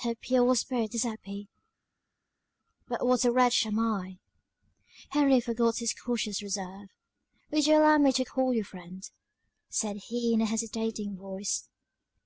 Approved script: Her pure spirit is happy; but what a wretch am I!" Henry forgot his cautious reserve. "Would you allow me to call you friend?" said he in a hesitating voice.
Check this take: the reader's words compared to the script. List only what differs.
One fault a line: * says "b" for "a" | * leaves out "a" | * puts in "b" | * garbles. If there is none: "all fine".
all fine